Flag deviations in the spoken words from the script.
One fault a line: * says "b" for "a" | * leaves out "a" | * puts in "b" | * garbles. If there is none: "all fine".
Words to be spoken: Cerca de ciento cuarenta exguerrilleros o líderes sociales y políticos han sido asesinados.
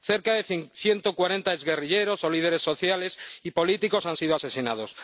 all fine